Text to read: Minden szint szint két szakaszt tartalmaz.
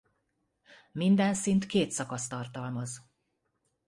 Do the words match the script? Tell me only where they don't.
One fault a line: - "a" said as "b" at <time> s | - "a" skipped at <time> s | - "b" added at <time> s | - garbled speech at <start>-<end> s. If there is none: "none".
- "szint" skipped at 1.7 s